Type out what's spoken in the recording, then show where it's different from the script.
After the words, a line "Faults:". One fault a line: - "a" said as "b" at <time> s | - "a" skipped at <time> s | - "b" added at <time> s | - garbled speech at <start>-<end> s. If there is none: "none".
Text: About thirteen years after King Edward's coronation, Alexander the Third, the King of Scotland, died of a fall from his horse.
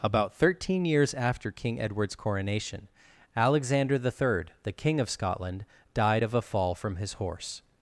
About thirteen years after King Edward's coronation, Alexander the Third, the King of Scotland, died of a fall from his horse.
Faults:
none